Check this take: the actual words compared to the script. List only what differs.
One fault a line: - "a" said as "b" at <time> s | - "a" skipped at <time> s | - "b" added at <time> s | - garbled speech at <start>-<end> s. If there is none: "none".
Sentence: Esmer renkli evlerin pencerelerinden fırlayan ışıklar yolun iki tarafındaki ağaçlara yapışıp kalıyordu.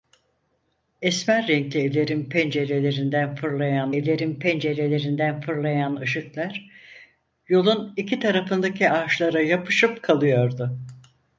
- "evlerin pencerelerinden fırlayan" added at 3.9 s